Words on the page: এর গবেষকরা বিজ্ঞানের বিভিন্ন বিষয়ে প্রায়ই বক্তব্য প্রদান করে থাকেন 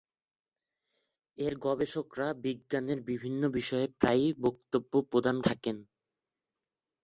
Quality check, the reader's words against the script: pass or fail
fail